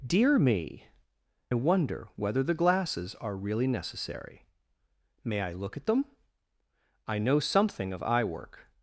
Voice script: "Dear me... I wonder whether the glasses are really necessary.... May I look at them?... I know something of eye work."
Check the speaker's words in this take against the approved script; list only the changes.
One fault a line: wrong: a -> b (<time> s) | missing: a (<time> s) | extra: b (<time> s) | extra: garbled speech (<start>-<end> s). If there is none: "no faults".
missing: I (0.9 s)